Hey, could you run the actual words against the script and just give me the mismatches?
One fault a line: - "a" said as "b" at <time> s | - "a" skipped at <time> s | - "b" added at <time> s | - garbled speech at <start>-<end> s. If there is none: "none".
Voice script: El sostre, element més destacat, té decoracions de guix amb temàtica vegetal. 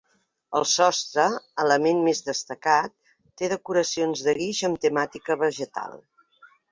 none